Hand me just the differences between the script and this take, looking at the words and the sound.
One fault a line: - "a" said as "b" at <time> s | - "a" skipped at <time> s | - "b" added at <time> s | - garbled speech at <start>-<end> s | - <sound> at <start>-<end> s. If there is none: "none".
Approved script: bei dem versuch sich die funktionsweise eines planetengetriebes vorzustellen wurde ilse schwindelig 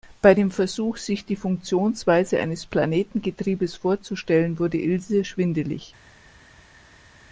none